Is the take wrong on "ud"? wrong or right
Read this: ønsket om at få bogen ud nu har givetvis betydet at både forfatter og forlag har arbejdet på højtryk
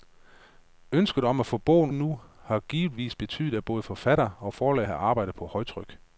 wrong